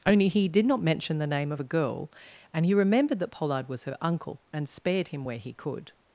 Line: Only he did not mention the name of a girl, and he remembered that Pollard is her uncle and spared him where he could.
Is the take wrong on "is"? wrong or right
wrong